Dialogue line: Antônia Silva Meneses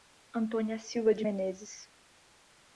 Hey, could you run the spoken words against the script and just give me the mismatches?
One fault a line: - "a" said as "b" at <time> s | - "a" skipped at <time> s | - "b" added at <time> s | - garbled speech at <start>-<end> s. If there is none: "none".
- "de" added at 1.1 s